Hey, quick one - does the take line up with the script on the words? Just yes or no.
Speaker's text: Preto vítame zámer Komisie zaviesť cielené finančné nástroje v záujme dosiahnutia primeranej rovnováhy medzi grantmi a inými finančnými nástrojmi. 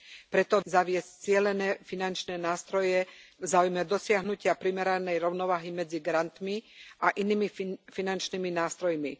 no